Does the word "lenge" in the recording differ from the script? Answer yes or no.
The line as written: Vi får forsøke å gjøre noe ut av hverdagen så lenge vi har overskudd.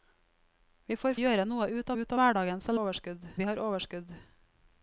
yes